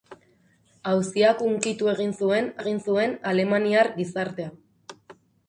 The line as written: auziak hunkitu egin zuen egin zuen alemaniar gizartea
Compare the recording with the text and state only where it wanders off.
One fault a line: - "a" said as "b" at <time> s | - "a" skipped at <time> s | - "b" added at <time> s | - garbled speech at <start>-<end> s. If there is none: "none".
none